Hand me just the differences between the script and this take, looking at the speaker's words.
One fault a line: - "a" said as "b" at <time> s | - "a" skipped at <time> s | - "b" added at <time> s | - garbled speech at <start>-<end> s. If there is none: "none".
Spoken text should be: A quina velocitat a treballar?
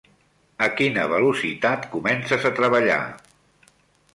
- "comences" added at 1.9 s